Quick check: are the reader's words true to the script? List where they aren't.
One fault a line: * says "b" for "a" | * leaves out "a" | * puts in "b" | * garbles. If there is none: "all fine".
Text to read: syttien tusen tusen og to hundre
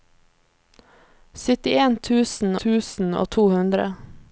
all fine